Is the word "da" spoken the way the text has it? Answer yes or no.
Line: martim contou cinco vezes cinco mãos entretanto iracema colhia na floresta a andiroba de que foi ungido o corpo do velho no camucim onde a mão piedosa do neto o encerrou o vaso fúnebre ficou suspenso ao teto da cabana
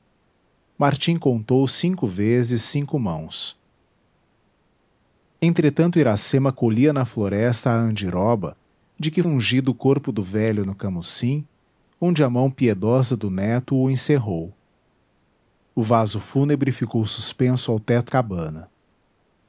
no